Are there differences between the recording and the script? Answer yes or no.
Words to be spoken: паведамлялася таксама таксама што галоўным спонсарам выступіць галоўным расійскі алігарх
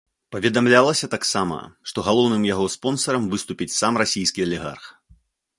yes